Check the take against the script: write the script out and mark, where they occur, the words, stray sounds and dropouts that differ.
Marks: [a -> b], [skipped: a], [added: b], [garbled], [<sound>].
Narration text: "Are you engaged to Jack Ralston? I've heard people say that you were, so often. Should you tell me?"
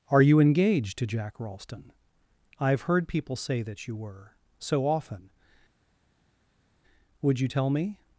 "Are you engaged to Jack Ralston? I've heard people say that you were, so often. [Should -> Would] you tell me?"